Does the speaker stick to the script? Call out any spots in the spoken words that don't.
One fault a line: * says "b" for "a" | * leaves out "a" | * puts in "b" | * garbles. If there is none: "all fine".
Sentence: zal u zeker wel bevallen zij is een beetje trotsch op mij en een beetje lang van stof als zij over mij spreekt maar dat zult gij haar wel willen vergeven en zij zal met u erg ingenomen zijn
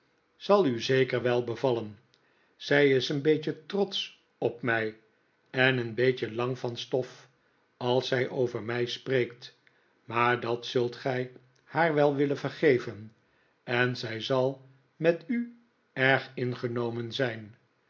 all fine